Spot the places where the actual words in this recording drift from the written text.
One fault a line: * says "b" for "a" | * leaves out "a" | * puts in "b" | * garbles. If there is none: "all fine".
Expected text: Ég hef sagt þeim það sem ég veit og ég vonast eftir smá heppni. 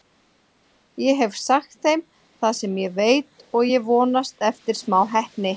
all fine